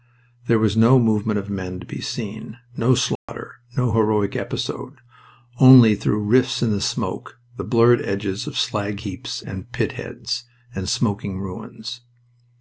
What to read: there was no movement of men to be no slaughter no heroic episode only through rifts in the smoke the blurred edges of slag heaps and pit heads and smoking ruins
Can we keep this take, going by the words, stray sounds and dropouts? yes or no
no